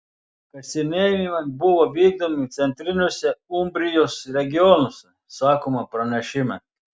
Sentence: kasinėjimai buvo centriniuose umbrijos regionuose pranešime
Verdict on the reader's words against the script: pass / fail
fail